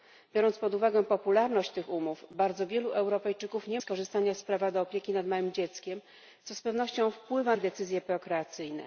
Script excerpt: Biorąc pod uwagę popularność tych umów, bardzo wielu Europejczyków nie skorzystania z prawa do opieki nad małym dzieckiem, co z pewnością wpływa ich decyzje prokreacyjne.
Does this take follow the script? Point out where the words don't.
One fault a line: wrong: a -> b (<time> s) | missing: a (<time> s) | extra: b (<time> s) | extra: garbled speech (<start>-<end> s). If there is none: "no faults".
no faults